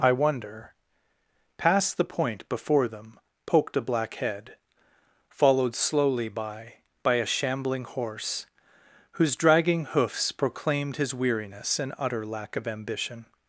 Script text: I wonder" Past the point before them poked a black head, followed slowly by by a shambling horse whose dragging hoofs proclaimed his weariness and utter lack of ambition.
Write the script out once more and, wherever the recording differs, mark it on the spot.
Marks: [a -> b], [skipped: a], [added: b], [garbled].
I wonder" Past the point before them poked a black head, followed slowly by by a shambling horse whose dragging hoofs proclaimed his weariness and utter lack of ambition.